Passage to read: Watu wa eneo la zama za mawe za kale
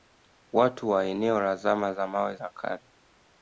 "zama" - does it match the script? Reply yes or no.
yes